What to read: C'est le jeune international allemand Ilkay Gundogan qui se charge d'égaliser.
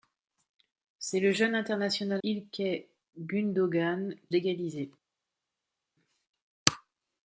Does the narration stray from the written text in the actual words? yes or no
yes